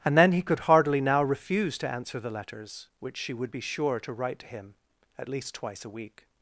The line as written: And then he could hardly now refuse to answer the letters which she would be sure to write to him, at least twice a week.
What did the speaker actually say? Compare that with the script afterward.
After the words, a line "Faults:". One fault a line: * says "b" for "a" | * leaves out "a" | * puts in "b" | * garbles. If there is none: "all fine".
And then he could hardly now refuse to answer the letters which she would be sure to write to him, at least twice a week.
Faults:
all fine